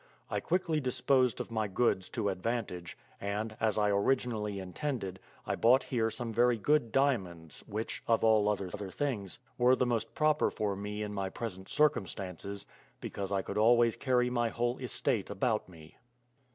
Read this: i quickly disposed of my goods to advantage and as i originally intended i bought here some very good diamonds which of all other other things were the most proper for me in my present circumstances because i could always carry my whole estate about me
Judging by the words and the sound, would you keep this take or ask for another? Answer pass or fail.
pass